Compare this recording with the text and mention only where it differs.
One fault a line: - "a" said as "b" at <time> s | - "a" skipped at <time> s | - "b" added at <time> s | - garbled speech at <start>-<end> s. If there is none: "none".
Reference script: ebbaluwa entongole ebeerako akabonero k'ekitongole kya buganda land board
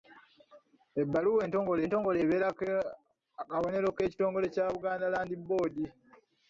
- "entongole" added at 1.8 s